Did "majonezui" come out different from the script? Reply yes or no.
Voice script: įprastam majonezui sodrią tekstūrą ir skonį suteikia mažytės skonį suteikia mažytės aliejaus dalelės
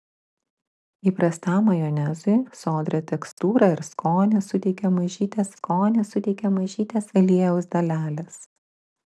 no